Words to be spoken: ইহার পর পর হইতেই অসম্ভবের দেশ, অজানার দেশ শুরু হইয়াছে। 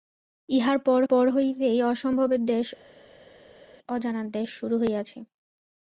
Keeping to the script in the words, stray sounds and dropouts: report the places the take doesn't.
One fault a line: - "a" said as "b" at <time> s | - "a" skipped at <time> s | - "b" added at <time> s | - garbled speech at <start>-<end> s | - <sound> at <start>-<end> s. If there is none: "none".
none